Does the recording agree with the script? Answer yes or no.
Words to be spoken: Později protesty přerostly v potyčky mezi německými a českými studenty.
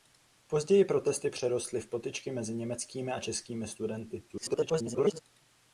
no